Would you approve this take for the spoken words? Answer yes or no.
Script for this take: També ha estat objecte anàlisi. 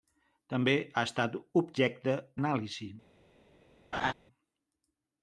yes